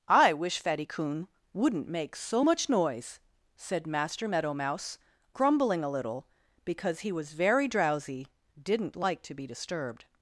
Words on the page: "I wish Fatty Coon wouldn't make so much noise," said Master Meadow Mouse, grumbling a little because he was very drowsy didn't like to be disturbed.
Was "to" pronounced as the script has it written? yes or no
yes